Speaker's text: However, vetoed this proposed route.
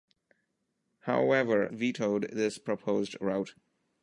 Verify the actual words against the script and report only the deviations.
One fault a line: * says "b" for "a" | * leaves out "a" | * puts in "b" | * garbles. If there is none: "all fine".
all fine